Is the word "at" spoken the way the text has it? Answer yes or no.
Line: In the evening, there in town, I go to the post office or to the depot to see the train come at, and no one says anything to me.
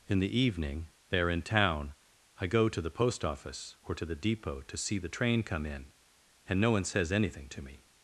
no